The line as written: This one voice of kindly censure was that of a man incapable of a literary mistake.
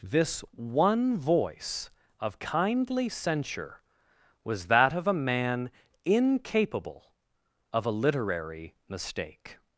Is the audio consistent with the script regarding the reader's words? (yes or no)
yes